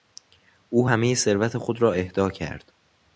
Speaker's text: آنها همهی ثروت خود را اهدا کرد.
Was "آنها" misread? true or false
true